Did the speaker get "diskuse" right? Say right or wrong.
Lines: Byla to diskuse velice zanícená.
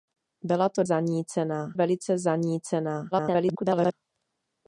wrong